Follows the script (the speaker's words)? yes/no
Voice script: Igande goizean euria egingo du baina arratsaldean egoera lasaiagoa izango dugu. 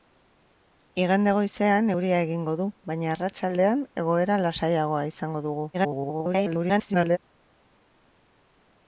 no